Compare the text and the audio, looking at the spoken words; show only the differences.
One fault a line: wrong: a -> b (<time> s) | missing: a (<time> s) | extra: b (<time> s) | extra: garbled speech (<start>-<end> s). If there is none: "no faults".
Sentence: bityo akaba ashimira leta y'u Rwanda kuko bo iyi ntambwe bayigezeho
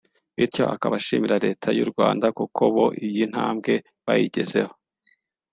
no faults